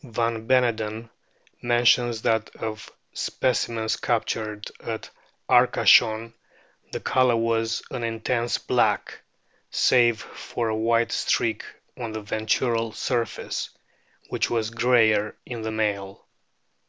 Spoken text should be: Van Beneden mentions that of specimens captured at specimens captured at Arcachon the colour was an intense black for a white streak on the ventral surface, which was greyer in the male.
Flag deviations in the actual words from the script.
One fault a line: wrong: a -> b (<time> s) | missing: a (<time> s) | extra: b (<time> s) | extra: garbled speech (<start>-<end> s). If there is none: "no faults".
missing: specimens captured at (5.1 s)
extra: save (9.7 s)